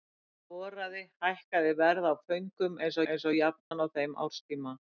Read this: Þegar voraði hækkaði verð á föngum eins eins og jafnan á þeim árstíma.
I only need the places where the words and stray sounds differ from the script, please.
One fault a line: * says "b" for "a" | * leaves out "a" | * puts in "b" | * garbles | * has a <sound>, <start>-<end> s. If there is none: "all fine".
* has a dropout, 3.6-3.7 s